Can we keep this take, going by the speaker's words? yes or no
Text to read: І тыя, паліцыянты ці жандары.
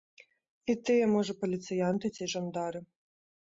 no